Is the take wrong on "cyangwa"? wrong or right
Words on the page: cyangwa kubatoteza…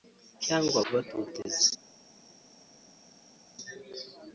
right